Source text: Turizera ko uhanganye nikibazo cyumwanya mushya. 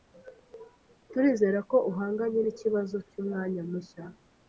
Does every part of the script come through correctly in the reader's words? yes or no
yes